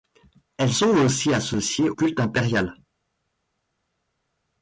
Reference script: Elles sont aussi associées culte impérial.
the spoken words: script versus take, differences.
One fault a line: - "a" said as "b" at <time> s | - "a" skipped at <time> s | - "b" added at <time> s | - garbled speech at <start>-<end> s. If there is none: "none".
none